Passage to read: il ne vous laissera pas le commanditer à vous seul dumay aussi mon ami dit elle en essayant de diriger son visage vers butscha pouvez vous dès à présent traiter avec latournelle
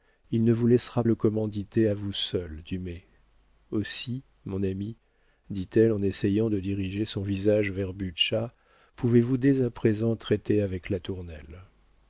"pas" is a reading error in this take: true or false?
true